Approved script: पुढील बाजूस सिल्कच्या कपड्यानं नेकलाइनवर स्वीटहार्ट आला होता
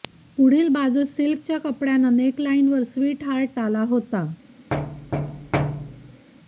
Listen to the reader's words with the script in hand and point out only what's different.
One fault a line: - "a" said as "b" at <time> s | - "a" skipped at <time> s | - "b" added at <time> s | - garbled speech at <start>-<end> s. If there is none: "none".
none